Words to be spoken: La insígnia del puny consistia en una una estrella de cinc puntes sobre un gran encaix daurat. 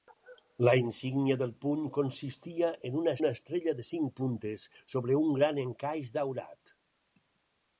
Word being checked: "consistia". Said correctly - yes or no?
yes